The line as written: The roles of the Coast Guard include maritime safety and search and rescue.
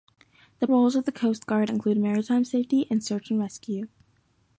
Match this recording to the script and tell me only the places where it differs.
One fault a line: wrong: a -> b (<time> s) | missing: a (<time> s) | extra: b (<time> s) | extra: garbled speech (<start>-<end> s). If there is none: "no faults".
no faults